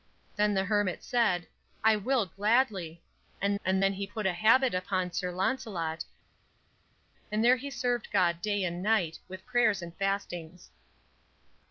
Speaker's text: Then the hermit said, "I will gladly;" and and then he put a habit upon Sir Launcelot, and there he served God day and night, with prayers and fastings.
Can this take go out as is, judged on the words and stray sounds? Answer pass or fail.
pass